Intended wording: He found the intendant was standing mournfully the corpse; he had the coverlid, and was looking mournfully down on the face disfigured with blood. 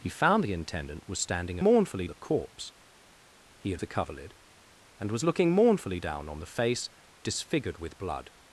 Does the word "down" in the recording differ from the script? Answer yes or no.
no